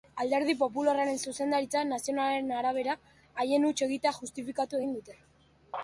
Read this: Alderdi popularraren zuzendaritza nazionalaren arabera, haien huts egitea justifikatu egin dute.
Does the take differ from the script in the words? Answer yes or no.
no